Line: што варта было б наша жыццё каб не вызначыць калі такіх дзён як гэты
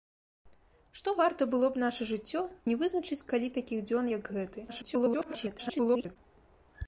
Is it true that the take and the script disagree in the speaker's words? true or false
true